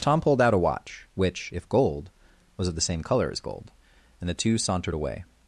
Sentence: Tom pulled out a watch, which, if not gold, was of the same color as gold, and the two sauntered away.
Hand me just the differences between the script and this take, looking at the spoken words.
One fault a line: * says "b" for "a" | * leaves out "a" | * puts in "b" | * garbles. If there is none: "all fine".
* leaves out "not"